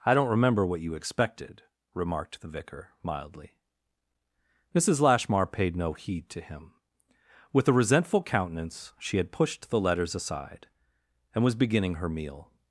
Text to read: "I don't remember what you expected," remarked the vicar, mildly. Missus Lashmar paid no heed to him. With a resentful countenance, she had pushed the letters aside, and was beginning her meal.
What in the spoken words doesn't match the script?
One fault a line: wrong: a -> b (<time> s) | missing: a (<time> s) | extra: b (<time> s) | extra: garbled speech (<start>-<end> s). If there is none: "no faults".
no faults